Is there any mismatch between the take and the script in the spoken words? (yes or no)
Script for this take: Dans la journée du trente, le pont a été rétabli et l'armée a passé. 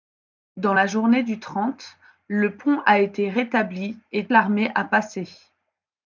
no